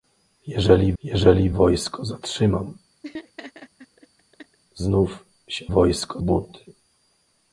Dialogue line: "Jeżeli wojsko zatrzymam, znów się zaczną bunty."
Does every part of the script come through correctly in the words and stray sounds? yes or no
no